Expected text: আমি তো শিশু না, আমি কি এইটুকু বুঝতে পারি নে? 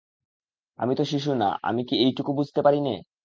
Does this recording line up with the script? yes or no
yes